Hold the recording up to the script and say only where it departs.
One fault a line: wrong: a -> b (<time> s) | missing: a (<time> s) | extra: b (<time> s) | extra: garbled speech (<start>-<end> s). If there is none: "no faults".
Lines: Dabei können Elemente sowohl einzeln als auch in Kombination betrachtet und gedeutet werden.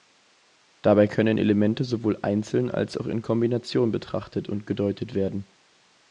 no faults